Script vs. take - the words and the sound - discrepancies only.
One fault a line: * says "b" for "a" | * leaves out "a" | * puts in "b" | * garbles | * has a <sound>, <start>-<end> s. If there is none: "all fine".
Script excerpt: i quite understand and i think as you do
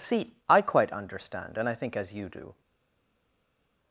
* puts in "see"